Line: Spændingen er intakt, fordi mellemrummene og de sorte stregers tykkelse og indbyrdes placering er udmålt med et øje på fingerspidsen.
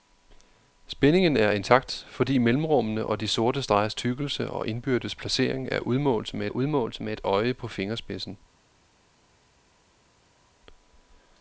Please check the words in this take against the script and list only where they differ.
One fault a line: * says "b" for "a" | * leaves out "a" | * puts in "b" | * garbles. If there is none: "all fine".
* puts in "udmålt med"